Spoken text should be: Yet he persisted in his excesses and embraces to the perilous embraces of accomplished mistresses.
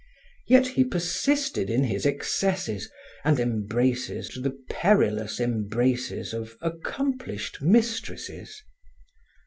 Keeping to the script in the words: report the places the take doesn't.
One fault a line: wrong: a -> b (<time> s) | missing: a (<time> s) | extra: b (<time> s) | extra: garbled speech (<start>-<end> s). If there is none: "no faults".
no faults